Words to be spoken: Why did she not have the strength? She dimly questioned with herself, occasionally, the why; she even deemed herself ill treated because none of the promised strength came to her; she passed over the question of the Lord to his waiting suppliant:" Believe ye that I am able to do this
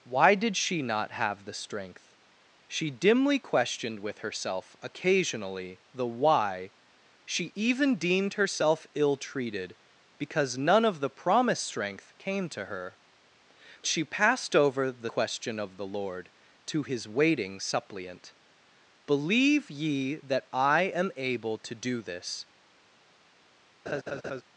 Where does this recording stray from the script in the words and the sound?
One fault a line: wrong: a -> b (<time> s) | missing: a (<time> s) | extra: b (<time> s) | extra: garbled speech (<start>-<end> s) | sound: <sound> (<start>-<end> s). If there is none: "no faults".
sound: laugh (23.9-24.4 s)